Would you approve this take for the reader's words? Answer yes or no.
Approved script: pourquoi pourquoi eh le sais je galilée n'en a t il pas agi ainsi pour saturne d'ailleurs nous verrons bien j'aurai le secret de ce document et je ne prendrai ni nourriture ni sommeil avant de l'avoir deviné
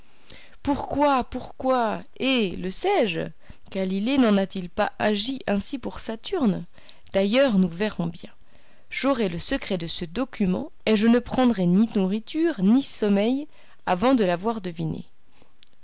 yes